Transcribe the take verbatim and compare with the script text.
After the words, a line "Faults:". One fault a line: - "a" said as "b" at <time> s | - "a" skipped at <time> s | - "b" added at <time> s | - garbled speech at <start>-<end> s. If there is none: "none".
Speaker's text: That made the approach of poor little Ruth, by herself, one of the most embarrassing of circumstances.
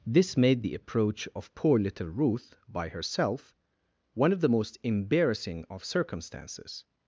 This made the approach of poor little Ruth, by herself, one of the most embarrassing of circumstances.
Faults:
- "That" said as "This" at 0.1 s